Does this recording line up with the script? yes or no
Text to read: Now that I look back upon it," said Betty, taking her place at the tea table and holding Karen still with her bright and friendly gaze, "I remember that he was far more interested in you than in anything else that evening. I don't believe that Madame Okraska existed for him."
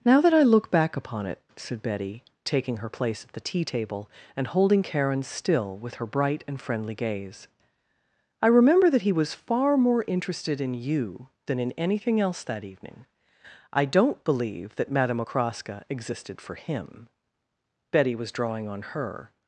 no